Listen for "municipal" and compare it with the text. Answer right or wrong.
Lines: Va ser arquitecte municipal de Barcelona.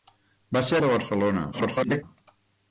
wrong